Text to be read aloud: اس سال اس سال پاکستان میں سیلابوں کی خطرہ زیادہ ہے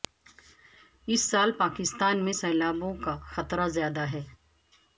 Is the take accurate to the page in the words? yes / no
no